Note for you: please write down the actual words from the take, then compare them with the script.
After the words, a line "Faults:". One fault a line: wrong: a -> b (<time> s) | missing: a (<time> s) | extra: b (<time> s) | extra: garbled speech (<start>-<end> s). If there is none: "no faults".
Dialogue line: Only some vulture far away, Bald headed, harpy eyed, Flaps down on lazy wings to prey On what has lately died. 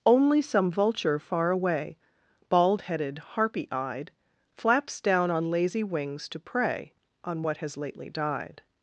Only some vulture far away, Bald headed, harpy eyed, Flaps down on lazy wings to prey On what has lately died.
Faults:
no faults